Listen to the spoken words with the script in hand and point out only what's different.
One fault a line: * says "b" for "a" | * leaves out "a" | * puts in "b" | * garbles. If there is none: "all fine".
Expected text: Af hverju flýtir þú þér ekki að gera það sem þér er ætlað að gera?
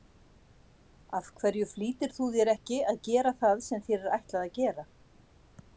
all fine